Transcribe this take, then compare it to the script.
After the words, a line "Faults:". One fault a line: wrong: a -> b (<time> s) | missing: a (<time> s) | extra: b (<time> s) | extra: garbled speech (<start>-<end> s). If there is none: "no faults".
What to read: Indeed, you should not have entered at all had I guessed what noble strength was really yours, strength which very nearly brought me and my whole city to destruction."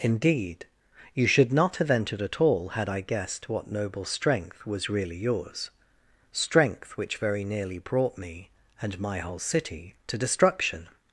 Indeed, you should not have entered at all had I guessed what noble strength was really yours, strength which very nearly brought me and my whole city to destruction."
Faults:
no faults